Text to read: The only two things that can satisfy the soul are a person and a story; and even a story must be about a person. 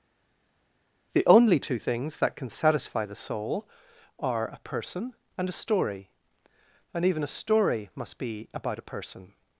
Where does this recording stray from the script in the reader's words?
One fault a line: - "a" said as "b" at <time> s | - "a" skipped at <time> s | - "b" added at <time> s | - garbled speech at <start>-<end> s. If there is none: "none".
none